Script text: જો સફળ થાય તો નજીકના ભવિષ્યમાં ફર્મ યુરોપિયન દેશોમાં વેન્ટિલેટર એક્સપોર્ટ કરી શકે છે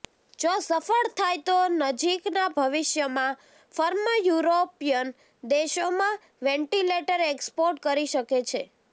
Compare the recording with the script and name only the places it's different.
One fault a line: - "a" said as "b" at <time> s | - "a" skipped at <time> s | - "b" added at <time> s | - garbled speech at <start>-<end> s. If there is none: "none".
none